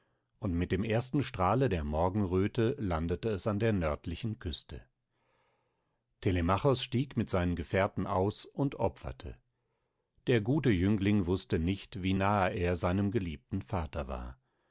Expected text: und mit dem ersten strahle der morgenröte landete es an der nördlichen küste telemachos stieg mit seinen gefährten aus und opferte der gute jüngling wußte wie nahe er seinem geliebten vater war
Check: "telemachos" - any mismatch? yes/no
no